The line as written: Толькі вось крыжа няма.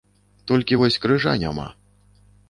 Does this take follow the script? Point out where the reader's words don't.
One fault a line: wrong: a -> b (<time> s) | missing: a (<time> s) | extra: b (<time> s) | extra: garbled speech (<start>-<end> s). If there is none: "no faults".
no faults